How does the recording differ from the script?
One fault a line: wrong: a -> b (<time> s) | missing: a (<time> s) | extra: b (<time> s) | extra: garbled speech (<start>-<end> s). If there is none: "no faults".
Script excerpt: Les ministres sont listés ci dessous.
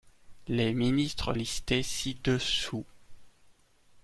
missing: sont (1.4 s)